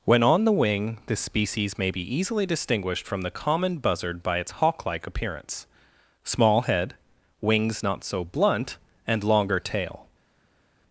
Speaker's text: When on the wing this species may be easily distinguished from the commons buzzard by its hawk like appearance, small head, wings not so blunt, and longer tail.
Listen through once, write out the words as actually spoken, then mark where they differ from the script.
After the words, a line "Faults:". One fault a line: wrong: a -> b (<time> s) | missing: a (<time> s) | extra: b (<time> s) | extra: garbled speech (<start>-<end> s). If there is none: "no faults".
When on the wing this species may be easily distinguished from the common buzzard by its hawk like appearance, small head, wings not so blunt, and longer tail.
Faults:
wrong: commons -> common (3.3 s)